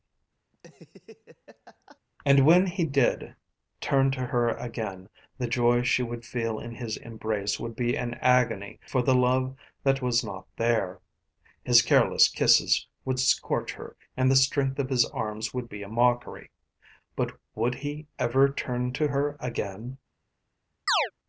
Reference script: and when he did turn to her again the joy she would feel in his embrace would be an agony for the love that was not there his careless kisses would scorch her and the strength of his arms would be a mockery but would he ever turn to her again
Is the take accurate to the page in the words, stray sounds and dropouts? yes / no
no